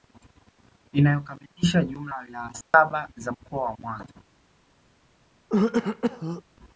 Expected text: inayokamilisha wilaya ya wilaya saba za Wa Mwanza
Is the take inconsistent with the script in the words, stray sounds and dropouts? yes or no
yes